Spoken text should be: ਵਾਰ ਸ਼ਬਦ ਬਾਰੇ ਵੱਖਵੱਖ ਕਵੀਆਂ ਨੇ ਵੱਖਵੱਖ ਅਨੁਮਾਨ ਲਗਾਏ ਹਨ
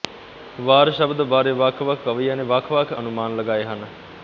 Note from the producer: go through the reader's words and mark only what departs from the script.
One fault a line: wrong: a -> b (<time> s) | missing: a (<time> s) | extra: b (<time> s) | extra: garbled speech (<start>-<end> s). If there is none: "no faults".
no faults